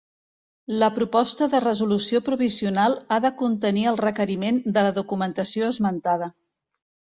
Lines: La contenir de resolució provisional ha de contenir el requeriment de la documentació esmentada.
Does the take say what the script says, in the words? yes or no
no